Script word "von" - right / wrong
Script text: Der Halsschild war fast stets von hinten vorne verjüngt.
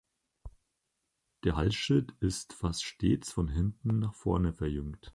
right